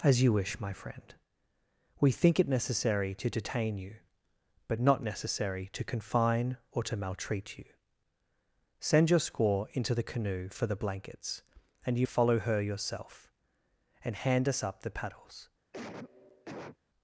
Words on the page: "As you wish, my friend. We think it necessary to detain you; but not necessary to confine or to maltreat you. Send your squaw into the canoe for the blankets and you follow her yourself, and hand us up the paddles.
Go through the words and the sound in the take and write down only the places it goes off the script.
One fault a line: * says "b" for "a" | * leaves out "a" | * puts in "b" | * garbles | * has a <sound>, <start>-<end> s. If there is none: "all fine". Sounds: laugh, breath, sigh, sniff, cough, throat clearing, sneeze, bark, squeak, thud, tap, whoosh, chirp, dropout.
* has a cough, 15.7-16.8 s